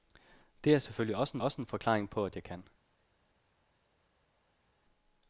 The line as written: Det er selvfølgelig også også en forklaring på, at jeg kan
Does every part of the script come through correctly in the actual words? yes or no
yes